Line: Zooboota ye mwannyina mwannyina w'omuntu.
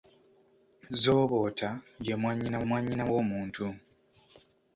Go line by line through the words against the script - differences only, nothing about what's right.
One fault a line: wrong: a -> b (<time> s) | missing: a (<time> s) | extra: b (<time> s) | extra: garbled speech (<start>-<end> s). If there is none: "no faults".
no faults